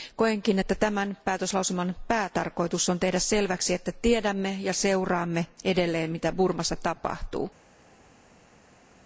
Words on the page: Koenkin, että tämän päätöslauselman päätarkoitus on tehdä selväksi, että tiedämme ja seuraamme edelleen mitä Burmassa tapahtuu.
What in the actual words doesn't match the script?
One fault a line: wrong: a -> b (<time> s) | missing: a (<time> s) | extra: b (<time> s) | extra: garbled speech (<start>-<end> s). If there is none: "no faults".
no faults